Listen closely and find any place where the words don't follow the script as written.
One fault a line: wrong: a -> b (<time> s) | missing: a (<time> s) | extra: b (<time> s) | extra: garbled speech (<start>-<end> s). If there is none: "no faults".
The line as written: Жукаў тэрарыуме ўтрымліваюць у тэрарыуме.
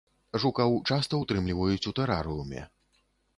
wrong: тэрарыуме -> часта (0.9 s)